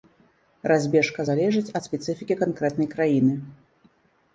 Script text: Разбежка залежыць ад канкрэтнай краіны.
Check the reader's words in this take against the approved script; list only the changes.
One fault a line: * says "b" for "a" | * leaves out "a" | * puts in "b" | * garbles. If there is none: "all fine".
* puts in "спецыфікі"